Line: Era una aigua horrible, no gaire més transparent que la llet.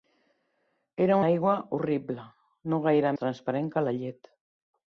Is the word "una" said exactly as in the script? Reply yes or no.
no